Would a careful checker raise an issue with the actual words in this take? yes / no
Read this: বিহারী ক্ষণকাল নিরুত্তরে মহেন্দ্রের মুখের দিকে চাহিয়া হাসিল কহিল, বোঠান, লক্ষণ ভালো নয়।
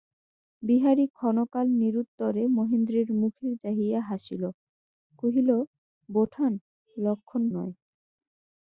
yes